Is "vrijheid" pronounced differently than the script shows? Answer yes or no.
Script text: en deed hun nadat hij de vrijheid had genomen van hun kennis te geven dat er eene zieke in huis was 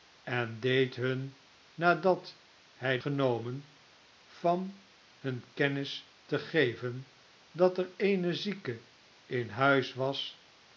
yes